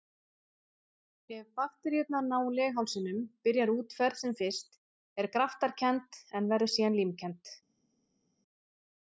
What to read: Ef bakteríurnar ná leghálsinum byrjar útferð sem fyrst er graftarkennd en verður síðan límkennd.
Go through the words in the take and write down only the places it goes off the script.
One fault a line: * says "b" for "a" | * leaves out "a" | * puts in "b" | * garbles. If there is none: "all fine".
all fine